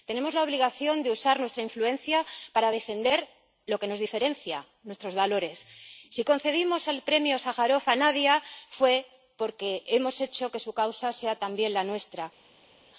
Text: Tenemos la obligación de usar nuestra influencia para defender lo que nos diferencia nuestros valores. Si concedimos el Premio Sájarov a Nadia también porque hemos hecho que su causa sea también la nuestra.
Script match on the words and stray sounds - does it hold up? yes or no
no